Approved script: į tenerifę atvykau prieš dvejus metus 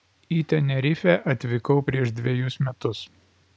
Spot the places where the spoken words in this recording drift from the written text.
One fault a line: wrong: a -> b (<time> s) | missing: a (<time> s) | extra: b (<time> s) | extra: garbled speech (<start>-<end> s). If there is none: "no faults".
no faults